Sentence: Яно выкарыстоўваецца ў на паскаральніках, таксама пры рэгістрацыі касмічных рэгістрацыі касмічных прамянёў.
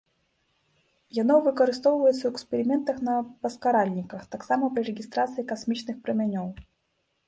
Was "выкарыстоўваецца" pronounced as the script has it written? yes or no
yes